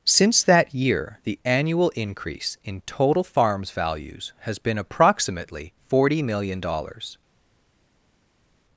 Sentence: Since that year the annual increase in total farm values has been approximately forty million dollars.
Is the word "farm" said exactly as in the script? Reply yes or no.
no